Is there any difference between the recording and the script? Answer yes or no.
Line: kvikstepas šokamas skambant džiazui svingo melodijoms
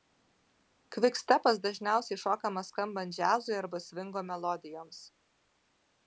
yes